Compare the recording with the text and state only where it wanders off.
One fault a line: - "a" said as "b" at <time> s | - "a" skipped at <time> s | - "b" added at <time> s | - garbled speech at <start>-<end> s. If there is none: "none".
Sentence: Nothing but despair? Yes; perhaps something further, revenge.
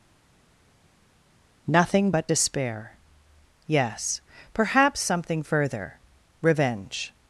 none